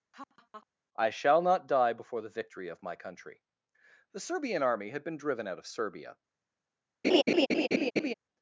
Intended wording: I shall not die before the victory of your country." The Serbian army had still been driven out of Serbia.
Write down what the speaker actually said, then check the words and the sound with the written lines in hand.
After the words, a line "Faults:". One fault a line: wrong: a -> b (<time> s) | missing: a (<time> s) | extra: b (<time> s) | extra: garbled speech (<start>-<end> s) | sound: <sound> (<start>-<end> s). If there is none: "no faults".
I shall not die before the victory of my country." The Serbian army had been driven out of Serbia.
Faults:
sound: laugh (0.1-0.7 s)
wrong: your -> my (2.8 s)
missing: still (5.0 s)
sound: laugh (7.0-8.1 s)